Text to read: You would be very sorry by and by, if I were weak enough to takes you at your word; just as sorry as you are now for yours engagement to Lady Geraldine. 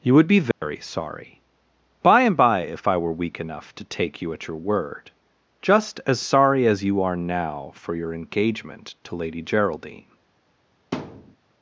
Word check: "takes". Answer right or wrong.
wrong